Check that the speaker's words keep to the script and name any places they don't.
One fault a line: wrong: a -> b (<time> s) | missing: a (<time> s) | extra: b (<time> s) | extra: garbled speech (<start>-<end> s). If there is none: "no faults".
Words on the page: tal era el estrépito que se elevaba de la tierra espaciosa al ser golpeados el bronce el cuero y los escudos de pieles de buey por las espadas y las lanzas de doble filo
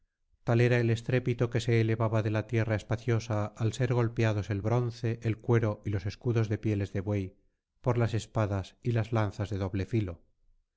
no faults